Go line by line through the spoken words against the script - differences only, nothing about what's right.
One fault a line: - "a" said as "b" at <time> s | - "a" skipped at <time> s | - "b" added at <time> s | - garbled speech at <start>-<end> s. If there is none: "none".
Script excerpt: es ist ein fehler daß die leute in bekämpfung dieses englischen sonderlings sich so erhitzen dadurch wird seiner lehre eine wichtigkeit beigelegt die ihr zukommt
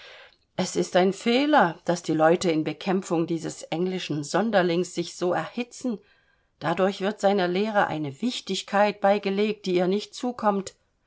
- "nicht" added at 9.9 s